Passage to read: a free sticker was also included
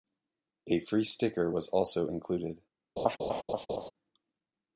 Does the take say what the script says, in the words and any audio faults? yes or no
no